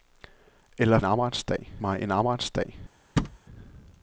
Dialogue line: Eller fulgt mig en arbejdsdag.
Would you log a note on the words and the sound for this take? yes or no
yes